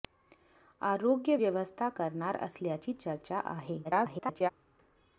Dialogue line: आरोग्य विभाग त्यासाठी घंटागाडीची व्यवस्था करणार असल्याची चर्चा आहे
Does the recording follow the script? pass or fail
fail